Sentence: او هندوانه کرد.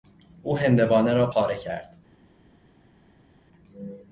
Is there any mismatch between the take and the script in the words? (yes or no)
yes